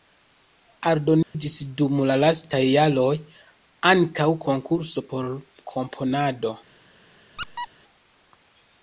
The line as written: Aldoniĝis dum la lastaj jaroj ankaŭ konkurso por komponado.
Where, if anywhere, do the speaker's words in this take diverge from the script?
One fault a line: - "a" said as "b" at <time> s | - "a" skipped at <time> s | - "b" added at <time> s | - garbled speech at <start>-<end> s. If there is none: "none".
none